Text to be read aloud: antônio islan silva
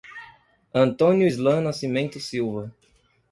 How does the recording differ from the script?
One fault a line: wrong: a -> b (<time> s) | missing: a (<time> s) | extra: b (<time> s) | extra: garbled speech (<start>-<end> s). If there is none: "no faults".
extra: nascimento (1.6 s)